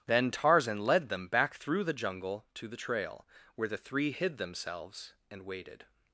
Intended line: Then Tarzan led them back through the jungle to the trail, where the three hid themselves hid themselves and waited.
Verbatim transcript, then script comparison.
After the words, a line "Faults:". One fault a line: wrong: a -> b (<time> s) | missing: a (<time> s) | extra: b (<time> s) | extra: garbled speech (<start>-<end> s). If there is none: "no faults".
Then Tarzan led them back through the jungle to the trail, where the three hid themselves and waited.
Faults:
missing: hid themselves (5.1 s)